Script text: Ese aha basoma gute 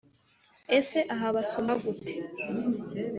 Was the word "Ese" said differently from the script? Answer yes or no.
no